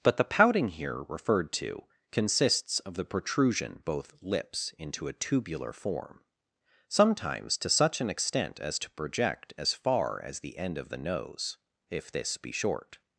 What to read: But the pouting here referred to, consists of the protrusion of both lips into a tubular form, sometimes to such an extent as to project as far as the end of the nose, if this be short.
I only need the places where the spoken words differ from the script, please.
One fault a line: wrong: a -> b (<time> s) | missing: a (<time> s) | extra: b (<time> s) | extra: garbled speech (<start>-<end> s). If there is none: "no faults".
missing: of (3.8 s)